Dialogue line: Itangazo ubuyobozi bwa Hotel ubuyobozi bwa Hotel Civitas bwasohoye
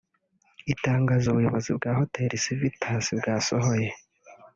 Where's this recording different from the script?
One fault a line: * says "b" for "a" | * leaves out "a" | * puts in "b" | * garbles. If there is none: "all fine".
* leaves out "ubuyobozi bwa Hotel"